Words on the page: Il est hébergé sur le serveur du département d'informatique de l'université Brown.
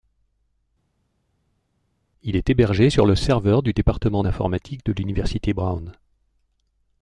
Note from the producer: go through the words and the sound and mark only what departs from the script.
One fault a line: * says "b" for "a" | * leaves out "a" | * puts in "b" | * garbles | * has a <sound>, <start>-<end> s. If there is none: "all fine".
all fine